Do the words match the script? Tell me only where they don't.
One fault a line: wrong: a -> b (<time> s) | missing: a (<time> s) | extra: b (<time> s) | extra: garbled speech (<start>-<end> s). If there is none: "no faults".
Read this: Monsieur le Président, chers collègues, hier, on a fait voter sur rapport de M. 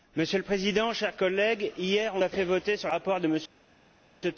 no faults